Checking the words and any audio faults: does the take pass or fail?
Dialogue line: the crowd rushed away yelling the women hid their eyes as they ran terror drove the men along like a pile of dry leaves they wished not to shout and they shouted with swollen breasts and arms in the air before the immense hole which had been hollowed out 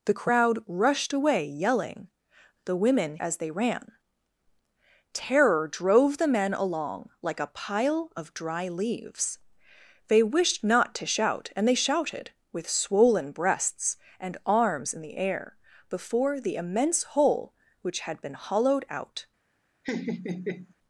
fail